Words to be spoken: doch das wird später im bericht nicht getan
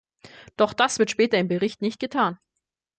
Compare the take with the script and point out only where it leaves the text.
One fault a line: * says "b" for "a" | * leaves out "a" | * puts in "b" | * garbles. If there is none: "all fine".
all fine